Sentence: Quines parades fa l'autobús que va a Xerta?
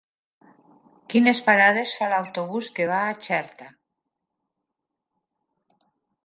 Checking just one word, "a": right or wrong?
right